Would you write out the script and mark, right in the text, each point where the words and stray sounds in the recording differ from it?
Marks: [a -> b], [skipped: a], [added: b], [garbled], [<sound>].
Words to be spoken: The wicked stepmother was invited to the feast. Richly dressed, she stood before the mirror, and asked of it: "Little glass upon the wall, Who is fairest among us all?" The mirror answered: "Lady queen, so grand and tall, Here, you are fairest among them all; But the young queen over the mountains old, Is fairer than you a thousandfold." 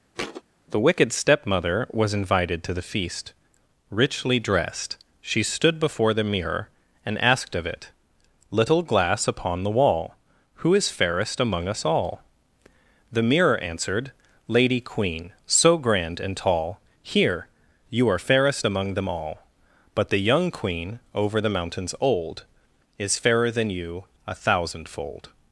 [thud] The wicked stepmother was invited to the feast. Richly dressed, she stood before the mirror, and asked of it: "Little glass upon the wall, Who is fairest among us all?" The mirror answered: "Lady queen, so grand and tall, Here, you are fairest among them all; But the young queen over the mountains old, Is fairer than you a thousandfold."